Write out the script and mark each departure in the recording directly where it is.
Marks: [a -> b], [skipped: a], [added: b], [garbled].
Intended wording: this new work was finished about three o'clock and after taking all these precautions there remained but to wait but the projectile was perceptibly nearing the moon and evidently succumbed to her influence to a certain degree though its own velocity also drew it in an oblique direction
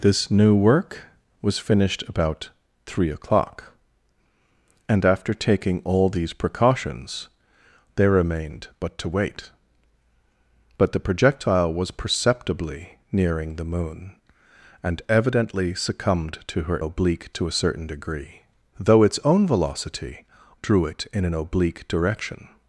this new work was finished about three o'clock and after taking all these precautions there remained but to wait but the projectile was perceptibly nearing the moon and evidently succumbed to her [influence -> oblique] to a certain degree though its own velocity [skipped: also] drew it in an oblique direction